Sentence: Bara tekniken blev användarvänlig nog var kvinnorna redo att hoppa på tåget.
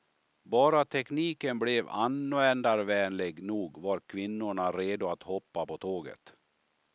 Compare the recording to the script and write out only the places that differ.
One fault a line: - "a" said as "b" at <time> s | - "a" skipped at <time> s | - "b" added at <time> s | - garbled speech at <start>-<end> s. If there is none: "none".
none